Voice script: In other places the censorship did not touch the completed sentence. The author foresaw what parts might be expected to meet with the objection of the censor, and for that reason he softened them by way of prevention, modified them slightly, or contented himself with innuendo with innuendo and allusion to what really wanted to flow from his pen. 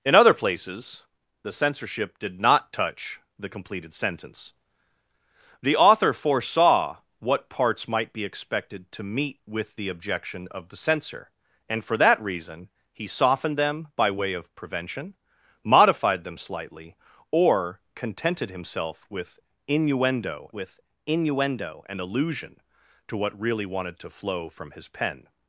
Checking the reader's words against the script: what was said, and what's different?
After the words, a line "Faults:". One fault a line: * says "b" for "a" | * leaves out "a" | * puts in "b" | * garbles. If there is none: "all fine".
In other places the censorship did not touch the completed sentence. The author foresaw what parts might be expected to meet with the objection of the censor, and for that reason he softened them by way of prevention, modified them slightly, or contented himself with innuendo with innuendo and allusion to what really wanted to flow from his pen.
Faults:
all fine